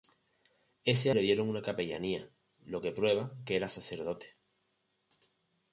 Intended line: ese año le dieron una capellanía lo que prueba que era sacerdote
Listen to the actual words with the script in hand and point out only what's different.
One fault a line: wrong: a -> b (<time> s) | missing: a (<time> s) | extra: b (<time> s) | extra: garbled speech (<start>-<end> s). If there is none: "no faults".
missing: año (1.1 s)